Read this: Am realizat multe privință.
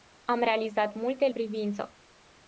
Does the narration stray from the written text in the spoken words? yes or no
no